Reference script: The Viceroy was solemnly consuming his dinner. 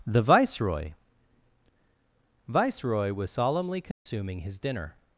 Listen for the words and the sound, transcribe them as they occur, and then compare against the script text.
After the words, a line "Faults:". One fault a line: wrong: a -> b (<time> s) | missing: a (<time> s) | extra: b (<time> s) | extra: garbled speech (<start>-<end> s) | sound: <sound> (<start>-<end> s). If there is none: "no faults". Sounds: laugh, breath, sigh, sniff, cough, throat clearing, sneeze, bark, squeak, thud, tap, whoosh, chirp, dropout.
The Viceroy Viceroy was solemnly consuming his dinner.
Faults:
extra: Viceroy (2.5 s)
sound: dropout (3.9-4.1 s)